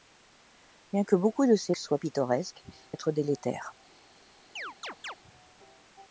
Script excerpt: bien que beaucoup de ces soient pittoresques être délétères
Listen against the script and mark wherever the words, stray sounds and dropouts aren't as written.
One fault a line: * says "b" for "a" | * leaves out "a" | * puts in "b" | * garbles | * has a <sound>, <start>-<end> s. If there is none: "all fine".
* has a chirp, 4.6-5.2 s